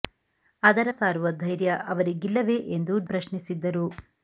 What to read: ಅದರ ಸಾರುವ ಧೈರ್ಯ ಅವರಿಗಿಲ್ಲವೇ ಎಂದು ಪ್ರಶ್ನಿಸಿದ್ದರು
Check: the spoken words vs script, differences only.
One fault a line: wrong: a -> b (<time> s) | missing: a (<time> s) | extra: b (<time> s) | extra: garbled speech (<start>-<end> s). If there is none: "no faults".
no faults